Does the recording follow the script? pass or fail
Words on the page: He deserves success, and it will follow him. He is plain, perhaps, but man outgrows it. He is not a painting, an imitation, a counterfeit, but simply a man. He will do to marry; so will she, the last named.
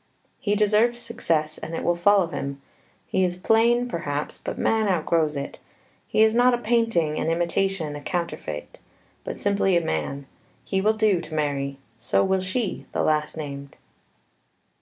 pass